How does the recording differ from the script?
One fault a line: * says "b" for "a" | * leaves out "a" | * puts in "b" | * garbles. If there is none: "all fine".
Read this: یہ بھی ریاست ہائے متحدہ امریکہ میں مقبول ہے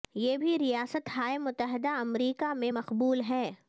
all fine